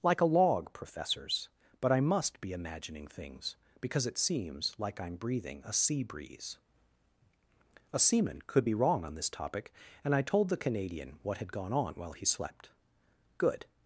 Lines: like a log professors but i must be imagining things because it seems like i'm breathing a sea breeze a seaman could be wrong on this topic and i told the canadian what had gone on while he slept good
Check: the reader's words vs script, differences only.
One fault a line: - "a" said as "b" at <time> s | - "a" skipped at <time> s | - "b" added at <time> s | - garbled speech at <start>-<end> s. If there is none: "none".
none